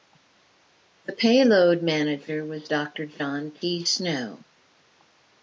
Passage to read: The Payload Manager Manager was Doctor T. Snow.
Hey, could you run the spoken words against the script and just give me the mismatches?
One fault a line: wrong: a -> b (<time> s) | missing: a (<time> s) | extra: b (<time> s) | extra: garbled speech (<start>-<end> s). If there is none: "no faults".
missing: Manager (2.4 s)
extra: John (3.1 s)